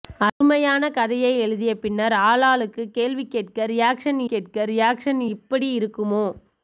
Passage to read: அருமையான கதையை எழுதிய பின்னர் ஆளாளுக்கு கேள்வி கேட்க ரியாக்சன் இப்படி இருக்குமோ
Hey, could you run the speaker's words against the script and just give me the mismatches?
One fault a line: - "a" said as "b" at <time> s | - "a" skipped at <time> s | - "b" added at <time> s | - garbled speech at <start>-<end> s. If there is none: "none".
- "கேட்க ரியாக்சன்" added at 4.2 s